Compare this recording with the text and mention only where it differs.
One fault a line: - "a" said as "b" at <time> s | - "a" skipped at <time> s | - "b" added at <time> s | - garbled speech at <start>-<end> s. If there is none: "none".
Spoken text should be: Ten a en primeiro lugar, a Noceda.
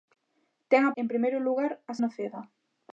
none